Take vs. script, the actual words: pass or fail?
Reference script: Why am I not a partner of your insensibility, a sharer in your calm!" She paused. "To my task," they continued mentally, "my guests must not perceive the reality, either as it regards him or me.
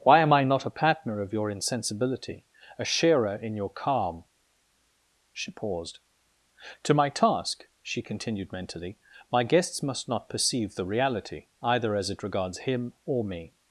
fail